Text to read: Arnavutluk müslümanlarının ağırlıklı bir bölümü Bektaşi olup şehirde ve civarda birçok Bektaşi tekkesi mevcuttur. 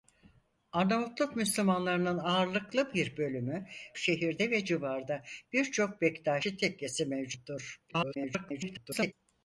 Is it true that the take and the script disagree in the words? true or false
true